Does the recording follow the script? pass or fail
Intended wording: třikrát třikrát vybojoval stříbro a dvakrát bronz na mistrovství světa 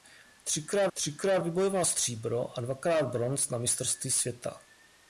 pass